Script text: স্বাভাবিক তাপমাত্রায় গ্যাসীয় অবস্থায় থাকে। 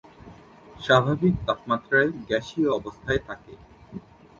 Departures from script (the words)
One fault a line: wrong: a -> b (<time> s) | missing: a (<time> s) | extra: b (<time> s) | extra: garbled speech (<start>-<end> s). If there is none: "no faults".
no faults